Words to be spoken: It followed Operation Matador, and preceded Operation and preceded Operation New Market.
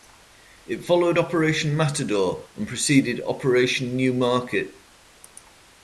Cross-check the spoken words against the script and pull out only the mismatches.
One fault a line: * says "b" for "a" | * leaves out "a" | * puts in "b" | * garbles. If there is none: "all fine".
* leaves out "and preceded Operation"